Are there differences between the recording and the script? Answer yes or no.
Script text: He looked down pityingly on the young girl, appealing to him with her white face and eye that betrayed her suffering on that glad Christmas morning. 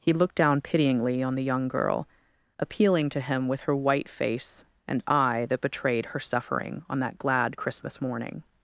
no